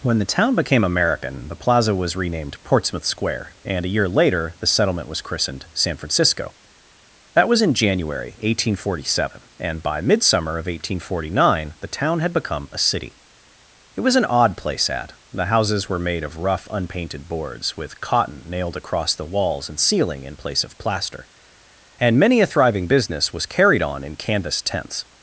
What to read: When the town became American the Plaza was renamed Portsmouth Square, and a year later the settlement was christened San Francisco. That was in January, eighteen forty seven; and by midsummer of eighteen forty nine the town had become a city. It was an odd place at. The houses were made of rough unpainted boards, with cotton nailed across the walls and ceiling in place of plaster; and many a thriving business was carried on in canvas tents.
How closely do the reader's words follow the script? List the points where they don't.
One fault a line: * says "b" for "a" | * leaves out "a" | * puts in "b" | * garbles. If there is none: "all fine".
all fine